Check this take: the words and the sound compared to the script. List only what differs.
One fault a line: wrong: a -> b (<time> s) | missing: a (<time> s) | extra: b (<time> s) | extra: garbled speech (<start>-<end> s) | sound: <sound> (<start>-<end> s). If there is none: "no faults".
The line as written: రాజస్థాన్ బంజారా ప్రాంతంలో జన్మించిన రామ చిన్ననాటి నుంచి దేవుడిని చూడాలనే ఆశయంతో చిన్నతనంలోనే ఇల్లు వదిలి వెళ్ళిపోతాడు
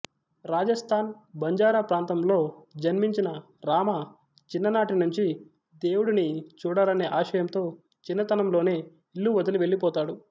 no faults